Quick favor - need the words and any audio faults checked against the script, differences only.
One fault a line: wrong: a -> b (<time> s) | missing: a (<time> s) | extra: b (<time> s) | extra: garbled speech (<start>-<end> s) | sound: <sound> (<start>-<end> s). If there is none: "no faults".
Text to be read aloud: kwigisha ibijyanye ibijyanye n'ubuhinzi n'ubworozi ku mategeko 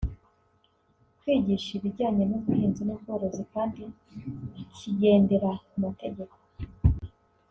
missing: ibijyanye (2.2 s)
extra: kandi kigendera (3.5 s)